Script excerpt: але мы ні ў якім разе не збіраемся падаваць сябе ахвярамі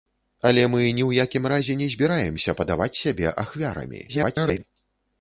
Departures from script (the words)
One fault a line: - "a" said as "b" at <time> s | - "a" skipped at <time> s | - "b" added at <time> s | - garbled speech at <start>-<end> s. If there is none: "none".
- garbled speech at 4.1-4.6 s